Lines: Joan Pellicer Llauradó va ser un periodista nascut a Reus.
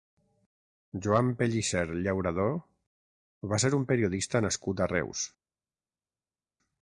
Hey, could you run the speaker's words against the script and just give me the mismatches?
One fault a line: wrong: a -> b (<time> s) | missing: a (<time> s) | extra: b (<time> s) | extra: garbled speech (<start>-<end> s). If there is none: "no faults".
no faults